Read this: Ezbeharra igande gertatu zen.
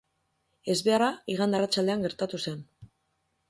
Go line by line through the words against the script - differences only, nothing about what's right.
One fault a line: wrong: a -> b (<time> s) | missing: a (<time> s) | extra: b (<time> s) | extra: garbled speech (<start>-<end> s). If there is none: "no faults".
extra: arratsaldean (1.6 s)